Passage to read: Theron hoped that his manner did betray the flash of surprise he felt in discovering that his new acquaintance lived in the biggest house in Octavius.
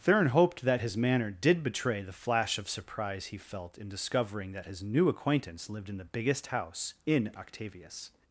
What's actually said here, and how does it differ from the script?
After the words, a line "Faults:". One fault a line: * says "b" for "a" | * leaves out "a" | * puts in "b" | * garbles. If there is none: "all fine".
Theron hoped that his manner did betray the flash of surprise he felt in discovering that his new acquaintance lived in the biggest house in Octavius.
Faults:
all fine